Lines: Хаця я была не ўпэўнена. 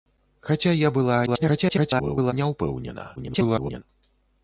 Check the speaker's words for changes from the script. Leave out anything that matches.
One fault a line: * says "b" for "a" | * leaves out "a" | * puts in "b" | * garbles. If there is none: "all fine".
* garbles
* garbles